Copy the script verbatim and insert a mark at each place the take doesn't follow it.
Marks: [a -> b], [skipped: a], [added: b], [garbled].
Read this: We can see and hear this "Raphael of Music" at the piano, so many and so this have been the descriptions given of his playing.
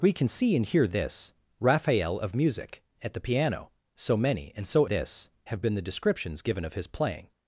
We can see and hear this "Raphael of Music" at the piano, so many and so this have been the descriptions given of his playing.